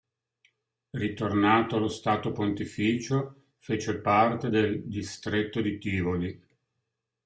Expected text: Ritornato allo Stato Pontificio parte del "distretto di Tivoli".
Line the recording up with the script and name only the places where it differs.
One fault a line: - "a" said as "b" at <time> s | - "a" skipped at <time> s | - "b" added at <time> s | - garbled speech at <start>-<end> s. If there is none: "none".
- "fece" added at 3.6 s